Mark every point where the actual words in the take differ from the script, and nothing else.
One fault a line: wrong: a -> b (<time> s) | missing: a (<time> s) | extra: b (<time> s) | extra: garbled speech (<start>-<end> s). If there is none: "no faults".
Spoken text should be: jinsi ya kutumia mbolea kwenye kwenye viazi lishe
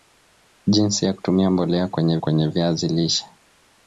no faults